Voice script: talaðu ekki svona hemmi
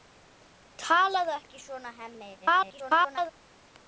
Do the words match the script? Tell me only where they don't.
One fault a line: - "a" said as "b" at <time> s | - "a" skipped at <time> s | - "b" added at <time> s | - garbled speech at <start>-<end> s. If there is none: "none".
- garbled speech at 2.4-3.3 s